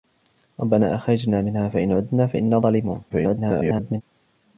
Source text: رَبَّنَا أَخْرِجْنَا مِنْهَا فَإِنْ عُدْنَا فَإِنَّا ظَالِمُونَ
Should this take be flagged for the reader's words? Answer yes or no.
yes